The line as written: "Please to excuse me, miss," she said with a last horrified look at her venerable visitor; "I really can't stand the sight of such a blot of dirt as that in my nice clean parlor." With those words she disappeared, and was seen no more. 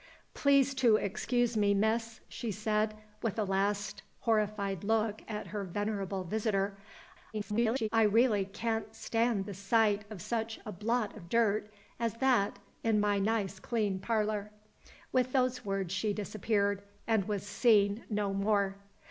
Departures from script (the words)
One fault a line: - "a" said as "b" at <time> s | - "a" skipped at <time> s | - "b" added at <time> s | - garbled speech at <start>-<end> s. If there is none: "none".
- garbled speech at 7.3-7.9 s